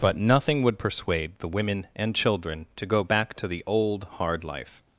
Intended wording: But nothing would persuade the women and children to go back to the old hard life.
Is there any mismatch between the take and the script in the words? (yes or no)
no